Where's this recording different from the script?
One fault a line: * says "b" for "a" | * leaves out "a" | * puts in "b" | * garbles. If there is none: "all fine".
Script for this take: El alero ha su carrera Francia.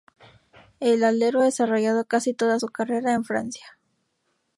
* puts in "desarrollado casi toda"
* puts in "en"